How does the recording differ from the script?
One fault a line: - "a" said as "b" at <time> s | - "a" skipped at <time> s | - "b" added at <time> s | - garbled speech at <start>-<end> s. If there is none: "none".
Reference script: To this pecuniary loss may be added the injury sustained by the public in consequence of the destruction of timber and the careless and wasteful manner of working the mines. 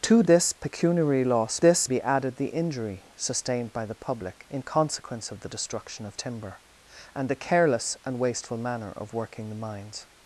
- "may" said as "this" at 1.6 s